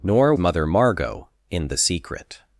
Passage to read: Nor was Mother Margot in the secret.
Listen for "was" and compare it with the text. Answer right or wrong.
wrong